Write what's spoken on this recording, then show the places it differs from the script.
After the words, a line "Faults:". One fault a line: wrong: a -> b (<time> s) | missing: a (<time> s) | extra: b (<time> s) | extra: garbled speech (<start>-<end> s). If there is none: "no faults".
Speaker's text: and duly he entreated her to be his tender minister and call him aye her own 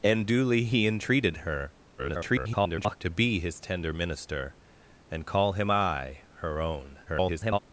and duly he entreated her [garbled] to be his tender minister and call him aye her own [garbled]
Faults:
extra: garbled speech (2.0-3.0 s)
extra: garbled speech (7.1-7.6 s)